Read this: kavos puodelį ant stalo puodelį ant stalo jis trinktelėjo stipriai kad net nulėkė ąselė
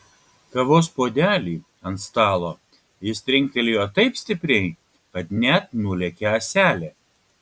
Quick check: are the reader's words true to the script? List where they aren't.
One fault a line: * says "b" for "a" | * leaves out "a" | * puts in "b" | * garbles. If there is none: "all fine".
* leaves out "puodelį ant stalo"
* puts in "taip"